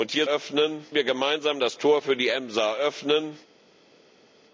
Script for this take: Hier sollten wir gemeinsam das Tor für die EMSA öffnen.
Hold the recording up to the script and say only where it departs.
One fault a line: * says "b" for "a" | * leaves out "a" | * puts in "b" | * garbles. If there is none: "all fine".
* says "öffnen" for "sollten"